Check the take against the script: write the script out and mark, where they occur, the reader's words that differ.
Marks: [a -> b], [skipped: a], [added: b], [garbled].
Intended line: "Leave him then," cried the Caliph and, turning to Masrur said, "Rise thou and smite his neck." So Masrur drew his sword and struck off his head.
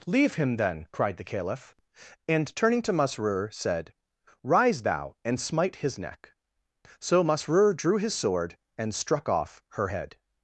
"Leave him then," cried the Caliph and, turning to Masrur said, "Rise thou and smite his neck." So Masrur drew his sword and struck off [his -> her] head.